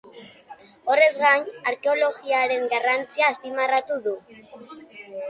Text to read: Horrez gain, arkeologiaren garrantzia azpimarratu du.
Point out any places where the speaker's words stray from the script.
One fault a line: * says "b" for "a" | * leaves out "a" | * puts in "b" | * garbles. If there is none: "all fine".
all fine